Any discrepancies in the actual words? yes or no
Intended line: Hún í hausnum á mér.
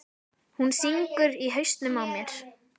yes